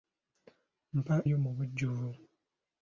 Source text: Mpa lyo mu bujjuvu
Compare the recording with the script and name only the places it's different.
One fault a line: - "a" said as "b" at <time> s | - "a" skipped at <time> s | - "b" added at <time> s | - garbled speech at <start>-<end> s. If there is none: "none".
none